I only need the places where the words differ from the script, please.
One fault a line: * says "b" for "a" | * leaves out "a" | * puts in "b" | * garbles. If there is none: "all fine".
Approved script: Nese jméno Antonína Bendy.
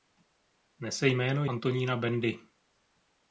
all fine